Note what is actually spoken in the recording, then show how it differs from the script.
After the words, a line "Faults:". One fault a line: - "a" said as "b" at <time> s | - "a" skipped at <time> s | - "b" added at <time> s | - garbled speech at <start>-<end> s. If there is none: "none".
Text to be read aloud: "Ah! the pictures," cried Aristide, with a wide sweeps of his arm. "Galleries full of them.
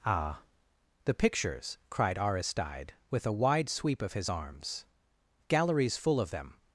"Ah! the pictures," cried Aristide, with a wide sweep of his arms. "Galleries full of them.
Faults:
- "sweeps" said as "sweep" at 3.7 s
- "arm" said as "arms" at 4.3 s